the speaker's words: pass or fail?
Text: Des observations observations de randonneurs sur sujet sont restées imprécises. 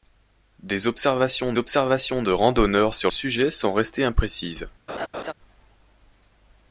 pass